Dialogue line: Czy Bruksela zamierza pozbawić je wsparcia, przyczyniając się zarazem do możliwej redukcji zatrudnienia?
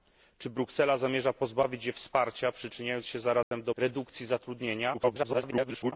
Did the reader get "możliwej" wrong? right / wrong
wrong